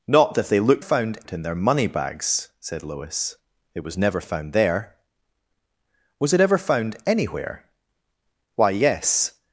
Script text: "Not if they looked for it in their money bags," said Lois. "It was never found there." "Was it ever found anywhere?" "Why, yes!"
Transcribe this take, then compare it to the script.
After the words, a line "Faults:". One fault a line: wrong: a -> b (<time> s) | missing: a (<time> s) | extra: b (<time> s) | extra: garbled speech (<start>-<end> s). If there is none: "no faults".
"Not if they looked found it in their money bags," said Lois. "It was never found there." "Was it ever found anywhere?" "Why, yes!"
Faults:
wrong: for -> found (0.8 s)